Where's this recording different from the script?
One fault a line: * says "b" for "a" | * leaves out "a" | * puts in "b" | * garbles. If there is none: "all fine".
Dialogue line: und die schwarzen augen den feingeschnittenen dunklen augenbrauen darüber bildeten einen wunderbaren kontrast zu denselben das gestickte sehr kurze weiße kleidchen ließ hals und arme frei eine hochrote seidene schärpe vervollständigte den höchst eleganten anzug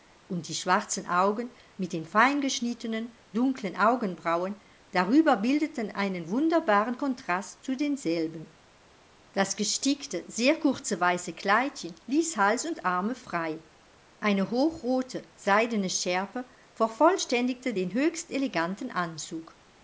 * puts in "mit"